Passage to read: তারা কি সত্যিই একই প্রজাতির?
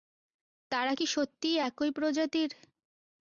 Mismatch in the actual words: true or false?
false